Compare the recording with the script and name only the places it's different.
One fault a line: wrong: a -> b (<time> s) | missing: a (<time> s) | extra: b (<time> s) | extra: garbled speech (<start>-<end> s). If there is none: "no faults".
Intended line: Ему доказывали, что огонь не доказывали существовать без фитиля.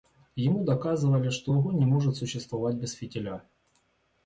wrong: доказывали -> может (1.8 s)